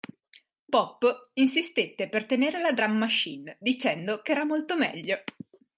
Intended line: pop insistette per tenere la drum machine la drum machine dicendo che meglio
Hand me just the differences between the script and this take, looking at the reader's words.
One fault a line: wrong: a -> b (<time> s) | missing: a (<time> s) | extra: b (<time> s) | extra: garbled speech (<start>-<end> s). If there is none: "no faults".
wrong: la drum machine dicendo che -> dicendo che era molto (3.6 s)